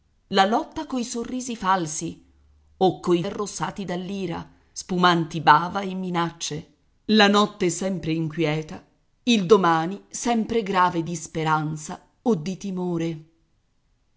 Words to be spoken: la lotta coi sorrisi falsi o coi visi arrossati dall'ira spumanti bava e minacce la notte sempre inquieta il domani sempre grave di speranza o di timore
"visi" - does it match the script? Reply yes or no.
no